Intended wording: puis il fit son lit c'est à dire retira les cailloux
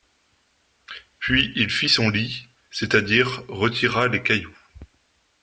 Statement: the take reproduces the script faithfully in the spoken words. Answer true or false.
true